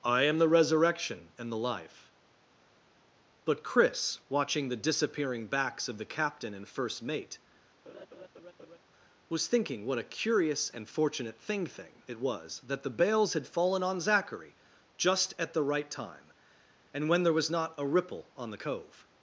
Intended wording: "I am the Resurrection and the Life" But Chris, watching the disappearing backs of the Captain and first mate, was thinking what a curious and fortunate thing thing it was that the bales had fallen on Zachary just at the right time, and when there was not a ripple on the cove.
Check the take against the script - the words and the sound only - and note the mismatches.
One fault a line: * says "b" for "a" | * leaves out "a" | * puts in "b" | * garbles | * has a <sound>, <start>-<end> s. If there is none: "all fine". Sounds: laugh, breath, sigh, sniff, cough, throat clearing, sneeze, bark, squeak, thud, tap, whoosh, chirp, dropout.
* has a laugh, 7.9-8.8 s